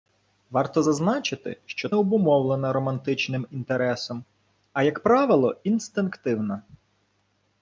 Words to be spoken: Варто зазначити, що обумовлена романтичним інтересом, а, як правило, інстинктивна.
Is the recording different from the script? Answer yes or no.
no